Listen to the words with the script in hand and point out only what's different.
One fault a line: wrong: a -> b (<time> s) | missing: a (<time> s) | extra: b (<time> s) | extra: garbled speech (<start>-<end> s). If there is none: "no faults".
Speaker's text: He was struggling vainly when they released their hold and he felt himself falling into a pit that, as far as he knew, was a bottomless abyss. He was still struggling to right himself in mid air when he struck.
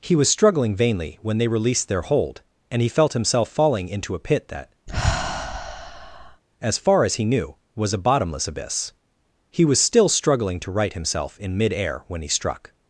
no faults